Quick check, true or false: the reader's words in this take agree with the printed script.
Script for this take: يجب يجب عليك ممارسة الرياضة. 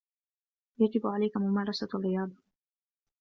false